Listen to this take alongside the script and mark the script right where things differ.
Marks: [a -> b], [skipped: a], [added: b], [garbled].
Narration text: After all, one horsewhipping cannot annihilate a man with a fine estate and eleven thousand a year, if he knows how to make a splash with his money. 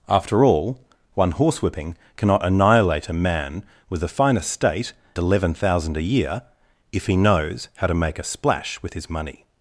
After all, one horsewhipping cannot annihilate a man with a fine estate [skipped: and] eleven thousand a year, if he knows how to make a splash with his money.